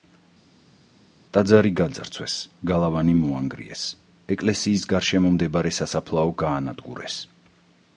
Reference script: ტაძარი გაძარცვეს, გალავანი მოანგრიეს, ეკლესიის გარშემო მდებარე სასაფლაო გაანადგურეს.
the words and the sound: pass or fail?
pass